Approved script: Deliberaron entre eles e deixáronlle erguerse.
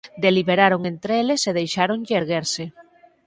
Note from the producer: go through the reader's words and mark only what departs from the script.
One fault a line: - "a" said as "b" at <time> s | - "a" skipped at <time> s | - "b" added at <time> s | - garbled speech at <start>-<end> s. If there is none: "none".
none